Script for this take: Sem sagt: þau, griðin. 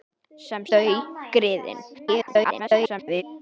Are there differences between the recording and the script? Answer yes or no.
yes